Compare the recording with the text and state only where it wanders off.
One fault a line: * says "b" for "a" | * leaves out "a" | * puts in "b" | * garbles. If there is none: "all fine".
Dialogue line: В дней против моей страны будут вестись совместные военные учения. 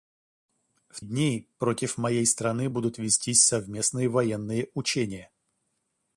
all fine